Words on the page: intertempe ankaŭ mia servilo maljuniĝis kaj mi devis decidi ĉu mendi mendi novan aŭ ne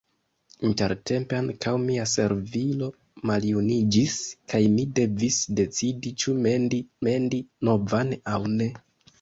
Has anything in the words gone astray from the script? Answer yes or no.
no